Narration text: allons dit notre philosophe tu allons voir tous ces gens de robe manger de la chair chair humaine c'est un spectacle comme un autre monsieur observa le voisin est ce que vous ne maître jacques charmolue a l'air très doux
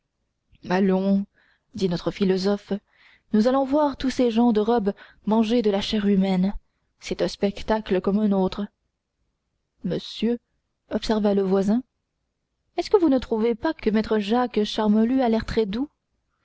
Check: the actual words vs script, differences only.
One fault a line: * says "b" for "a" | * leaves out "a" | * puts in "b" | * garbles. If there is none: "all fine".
* says "nous" for "tu"
* leaves out "chair"
* puts in "trouvez pas que"